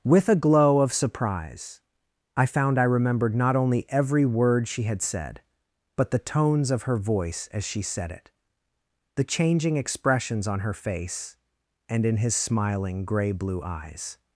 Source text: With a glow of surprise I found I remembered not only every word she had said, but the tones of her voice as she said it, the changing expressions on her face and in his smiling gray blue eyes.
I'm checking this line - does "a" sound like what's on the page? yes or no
yes